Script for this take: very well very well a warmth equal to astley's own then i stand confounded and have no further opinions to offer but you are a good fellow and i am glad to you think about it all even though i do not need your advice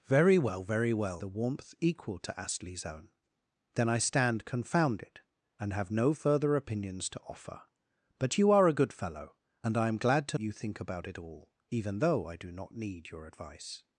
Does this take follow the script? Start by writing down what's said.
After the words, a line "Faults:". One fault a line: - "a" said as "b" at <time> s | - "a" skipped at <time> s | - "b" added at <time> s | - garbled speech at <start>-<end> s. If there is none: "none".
very well very well a warmth equal to astley's own then i stand confounded and have no further opinions to offer but you are a good fellow and i am glad to you think about it all even though i do not need your advice
Faults:
none